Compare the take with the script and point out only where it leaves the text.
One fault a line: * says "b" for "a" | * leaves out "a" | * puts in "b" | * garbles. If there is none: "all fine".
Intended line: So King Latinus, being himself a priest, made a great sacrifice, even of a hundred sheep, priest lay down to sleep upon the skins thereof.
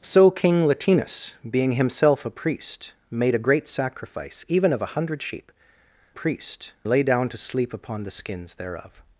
all fine